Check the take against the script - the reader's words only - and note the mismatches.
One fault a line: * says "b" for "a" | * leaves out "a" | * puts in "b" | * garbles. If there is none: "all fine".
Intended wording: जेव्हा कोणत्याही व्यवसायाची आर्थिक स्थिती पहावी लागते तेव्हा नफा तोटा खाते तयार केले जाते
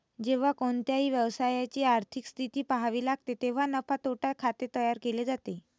all fine